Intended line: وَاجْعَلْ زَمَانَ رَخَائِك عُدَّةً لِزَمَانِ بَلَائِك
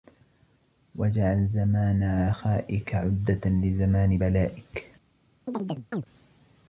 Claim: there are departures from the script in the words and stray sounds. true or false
true